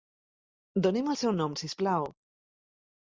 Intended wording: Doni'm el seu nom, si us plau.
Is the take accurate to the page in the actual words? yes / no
yes